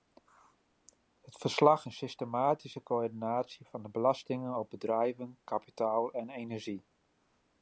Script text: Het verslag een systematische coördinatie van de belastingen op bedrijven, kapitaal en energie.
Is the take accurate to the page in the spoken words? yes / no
yes